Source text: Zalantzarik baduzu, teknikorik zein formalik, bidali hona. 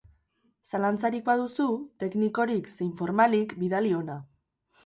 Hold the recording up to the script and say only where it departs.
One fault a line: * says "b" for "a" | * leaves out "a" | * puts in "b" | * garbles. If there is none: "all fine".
all fine